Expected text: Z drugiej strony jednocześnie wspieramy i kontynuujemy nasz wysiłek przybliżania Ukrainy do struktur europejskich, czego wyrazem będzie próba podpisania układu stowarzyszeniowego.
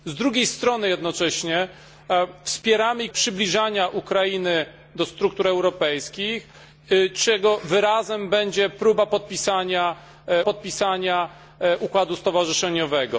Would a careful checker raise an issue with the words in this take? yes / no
yes